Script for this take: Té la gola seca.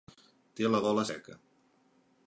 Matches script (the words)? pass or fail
pass